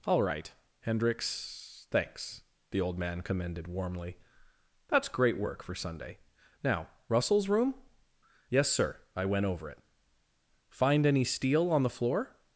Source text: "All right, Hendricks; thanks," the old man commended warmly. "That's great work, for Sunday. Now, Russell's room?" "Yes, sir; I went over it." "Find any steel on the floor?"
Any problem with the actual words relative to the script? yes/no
no